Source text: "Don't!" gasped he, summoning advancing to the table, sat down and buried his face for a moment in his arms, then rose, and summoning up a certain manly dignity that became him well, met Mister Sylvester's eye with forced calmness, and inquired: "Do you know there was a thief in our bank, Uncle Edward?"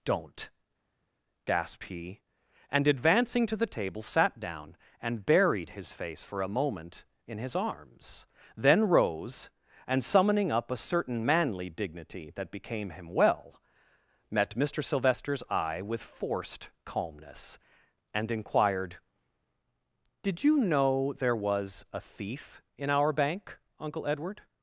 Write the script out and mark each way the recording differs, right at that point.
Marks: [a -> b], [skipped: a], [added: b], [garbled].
"Don't!" gasped he, [summoning -> and] advancing to the table, sat down and buried his face for a moment in his arms, then rose, and summoning up a certain manly dignity that became him well, met Mister Sylvester's eye with forced calmness, and inquired: ["Do -> Did] you know there was a thief in our bank, Uncle Edward?"